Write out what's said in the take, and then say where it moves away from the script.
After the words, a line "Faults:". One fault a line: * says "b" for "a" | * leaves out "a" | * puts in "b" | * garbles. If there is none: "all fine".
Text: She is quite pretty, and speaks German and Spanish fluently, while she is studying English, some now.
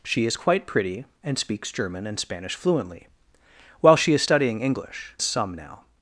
She is quite pretty, and speaks German and Spanish fluently, while she is studying English, some now.
Faults:
all fine